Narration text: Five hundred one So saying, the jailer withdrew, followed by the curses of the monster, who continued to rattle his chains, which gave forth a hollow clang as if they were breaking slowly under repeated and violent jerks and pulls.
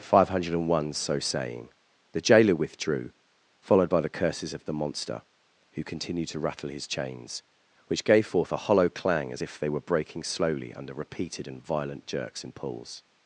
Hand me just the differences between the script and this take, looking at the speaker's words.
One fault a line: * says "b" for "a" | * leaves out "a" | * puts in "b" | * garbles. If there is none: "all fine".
all fine